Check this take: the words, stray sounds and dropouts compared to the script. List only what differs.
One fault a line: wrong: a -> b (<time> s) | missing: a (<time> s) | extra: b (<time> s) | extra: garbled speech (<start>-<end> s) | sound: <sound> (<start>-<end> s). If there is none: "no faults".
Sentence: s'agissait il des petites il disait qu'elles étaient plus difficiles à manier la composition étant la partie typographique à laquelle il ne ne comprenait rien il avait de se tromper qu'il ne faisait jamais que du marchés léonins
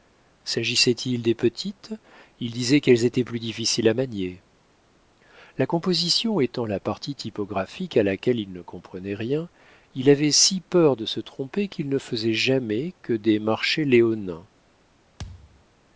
missing: ne (8.6 s)
extra: si peur (10.3 s)
wrong: du -> des (13.1 s)
sound: thud (15.2-15.6 s)